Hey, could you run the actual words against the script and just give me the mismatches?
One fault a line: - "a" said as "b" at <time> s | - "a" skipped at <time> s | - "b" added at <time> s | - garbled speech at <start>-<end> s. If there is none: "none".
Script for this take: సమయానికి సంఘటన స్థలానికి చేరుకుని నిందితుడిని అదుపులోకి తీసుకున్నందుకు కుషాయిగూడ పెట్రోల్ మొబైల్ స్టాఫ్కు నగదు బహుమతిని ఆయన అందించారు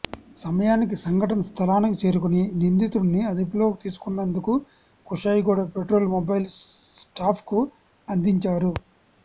- "నగదు బహుమతిని ఆయన" skipped at 7.6 s